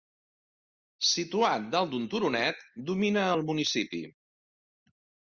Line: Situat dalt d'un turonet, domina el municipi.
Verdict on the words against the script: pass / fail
pass